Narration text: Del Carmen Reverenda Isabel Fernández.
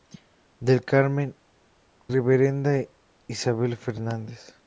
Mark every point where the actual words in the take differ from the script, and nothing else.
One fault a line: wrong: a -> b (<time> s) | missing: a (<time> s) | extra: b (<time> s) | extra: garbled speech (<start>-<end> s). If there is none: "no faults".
no faults